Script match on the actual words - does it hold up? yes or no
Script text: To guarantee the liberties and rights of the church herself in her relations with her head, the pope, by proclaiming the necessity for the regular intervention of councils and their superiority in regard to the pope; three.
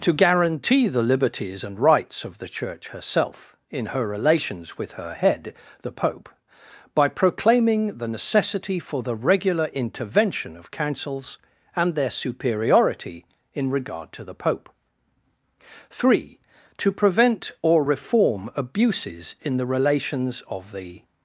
no